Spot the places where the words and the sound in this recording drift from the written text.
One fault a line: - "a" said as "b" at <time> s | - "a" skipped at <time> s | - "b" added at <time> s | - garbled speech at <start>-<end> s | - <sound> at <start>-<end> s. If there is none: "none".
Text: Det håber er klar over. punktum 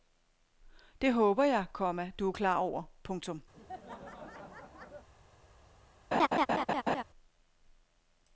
- "jeg komma du" added at 1.4 s
- laugh at 3.5-5.1 s
- laugh at 6.1-7.0 s